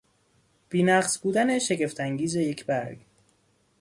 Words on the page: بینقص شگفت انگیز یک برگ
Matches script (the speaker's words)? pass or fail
fail